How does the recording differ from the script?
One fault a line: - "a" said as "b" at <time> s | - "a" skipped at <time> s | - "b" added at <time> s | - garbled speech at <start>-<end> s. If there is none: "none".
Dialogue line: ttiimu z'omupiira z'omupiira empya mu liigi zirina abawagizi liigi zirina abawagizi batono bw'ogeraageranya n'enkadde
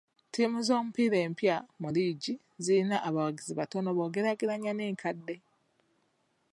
- "z'omupiira" skipped at 1.2 s
- "liigi zirina abawagizi" skipped at 3.5 s